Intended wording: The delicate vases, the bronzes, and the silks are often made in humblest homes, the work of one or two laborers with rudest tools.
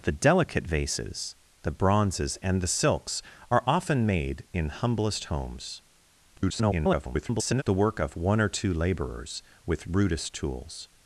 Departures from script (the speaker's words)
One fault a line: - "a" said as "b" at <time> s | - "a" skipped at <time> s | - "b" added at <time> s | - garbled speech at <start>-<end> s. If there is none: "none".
- garbled speech at 6.4-7.6 s